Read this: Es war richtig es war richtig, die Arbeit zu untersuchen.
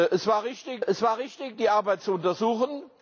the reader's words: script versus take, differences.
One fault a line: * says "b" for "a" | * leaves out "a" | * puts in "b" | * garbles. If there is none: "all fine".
all fine